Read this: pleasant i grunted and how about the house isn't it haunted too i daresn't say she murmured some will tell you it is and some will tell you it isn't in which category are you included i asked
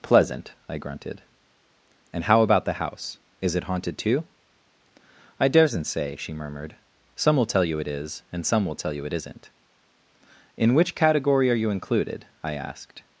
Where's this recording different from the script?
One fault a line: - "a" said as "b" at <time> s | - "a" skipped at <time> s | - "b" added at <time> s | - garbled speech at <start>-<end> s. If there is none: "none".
- "isn't" said as "is" at 3.4 s